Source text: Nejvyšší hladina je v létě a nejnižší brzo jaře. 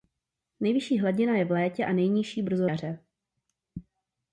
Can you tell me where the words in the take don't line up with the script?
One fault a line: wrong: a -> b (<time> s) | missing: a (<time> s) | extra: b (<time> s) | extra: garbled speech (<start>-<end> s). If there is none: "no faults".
no faults